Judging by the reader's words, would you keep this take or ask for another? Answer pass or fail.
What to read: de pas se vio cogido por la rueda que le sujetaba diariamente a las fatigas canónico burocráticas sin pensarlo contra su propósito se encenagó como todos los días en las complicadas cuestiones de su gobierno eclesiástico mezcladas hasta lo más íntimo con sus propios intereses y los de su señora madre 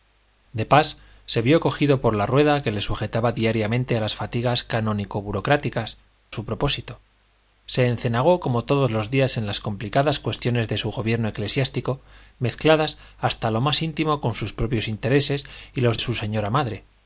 fail